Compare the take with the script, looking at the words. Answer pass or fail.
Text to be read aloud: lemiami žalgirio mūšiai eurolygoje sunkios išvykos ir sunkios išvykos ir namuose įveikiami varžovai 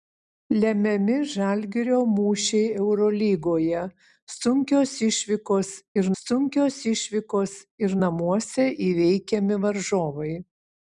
pass